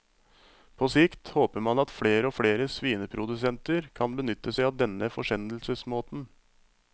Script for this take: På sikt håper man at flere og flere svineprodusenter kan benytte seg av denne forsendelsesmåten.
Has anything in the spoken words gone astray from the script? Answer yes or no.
no